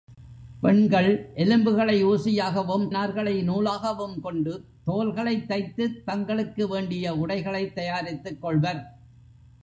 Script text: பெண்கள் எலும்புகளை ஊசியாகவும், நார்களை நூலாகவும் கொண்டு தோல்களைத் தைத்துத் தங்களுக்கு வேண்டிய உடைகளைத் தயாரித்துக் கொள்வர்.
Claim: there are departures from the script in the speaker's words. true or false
false